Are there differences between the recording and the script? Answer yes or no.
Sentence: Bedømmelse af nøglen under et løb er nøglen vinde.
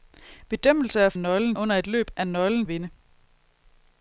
no